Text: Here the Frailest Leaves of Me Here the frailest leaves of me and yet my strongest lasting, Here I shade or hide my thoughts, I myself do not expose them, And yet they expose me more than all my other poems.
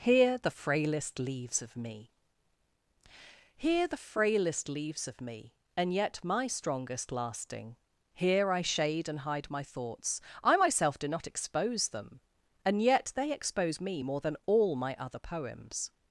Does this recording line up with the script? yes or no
no